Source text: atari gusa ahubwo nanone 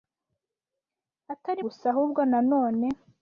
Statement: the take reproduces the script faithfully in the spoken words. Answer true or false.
true